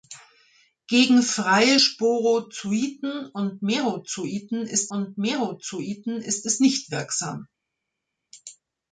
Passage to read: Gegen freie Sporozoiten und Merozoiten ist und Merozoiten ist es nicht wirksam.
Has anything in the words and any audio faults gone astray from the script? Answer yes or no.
no